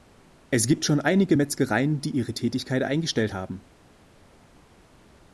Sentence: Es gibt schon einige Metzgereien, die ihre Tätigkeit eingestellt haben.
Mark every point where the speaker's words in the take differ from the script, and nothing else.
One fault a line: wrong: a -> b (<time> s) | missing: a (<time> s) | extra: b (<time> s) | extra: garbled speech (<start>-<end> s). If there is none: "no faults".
no faults